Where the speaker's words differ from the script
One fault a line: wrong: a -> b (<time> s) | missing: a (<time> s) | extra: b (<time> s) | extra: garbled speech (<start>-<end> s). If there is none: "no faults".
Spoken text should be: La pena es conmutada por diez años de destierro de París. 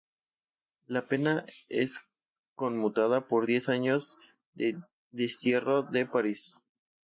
no faults